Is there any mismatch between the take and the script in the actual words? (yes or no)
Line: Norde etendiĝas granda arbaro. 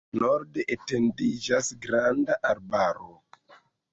no